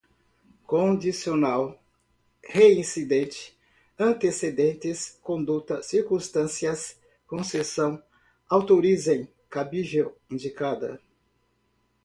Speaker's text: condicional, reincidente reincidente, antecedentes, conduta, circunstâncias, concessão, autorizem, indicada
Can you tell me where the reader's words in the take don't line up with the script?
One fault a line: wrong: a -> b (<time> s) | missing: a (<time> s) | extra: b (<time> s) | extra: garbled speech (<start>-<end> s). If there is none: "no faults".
missing: reincidente (3.5 s)
extra: cabível (9.5 s)